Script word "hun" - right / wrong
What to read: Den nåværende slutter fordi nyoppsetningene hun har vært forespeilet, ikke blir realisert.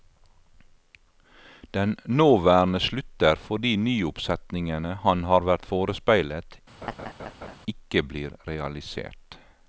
wrong